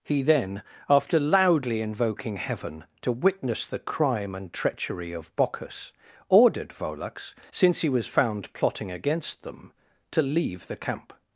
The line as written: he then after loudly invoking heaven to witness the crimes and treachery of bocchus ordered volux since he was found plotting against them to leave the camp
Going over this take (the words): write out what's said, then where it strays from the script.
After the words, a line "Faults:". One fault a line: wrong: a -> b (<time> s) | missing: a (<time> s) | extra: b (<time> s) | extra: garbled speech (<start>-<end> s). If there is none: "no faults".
he then after loudly invoking heaven to witness the crime and treachery of bocchus ordered volux since he was found plotting against them to leave the camp
Faults:
wrong: crimes -> crime (3.8 s)